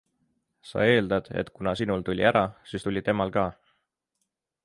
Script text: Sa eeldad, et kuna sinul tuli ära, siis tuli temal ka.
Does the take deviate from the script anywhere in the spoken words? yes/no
no